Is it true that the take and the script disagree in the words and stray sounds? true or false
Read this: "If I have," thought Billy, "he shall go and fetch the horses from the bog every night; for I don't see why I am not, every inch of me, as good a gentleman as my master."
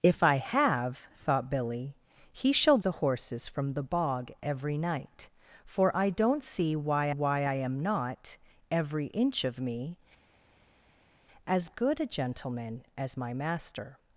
true